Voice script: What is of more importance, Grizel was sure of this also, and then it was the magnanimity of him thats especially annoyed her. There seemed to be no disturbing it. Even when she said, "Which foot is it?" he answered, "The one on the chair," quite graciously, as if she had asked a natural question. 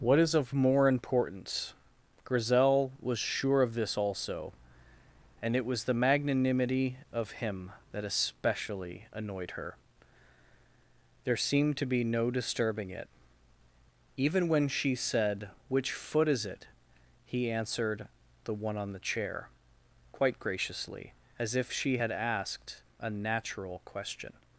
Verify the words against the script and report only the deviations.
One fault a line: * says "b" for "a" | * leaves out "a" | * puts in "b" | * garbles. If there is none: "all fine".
* leaves out "then"
* says "that" for "thats"